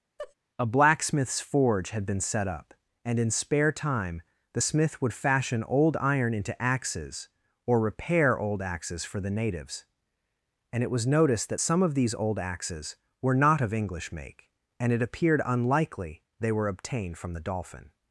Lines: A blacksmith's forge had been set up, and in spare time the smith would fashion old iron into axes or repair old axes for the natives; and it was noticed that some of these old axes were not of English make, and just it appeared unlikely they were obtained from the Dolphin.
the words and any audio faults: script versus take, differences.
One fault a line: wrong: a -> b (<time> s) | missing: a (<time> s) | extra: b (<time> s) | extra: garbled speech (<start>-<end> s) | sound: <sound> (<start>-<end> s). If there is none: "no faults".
sound: laugh (0.2-0.3 s)
missing: just (14.9 s)